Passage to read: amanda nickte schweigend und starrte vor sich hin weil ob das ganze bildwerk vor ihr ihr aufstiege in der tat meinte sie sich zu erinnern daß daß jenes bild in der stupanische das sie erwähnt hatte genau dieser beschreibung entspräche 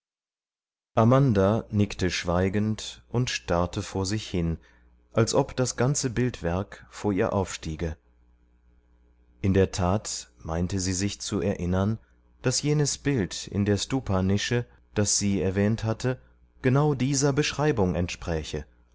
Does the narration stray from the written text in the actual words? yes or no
yes